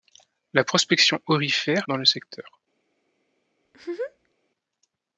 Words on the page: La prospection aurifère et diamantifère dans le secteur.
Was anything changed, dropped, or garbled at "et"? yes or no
yes